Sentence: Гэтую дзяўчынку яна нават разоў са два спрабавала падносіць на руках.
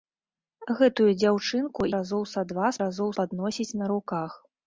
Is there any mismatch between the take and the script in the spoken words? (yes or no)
yes